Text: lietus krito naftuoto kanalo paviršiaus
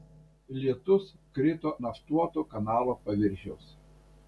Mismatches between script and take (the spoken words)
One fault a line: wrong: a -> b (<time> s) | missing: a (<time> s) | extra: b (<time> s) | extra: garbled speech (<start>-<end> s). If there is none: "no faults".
no faults